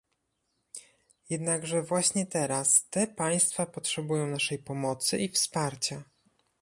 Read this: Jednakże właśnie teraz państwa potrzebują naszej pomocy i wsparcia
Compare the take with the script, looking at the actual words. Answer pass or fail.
fail